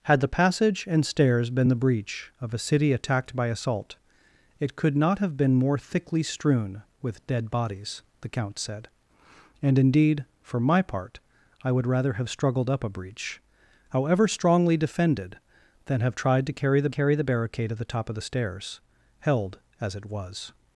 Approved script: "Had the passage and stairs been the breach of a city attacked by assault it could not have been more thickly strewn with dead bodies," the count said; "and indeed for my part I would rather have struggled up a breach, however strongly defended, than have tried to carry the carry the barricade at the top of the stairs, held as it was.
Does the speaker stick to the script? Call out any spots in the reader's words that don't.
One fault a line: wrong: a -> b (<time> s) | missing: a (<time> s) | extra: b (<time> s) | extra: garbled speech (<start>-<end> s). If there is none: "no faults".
no faults